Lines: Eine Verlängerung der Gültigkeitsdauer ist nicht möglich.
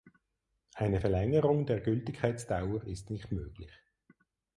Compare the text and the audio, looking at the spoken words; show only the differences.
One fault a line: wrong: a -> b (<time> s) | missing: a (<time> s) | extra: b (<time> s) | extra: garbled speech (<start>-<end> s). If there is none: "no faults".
no faults